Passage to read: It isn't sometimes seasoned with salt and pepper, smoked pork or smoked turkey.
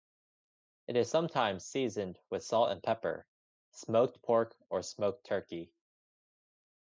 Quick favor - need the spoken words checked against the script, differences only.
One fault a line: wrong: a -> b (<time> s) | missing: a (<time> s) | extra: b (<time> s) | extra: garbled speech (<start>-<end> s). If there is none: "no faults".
wrong: isn't -> is (1.0 s)